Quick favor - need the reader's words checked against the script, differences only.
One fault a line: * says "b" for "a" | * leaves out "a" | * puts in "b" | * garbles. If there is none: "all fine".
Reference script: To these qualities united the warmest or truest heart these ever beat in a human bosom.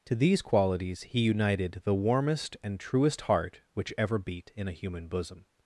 * puts in "he"
* says "and" for "or"
* says "which" for "these"